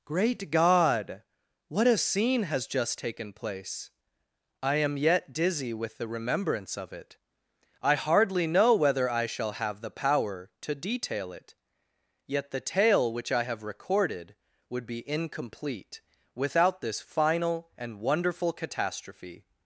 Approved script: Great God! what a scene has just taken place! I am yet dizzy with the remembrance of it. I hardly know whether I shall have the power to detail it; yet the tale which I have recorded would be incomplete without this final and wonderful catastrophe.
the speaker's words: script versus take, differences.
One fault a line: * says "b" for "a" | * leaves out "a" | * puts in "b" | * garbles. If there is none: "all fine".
all fine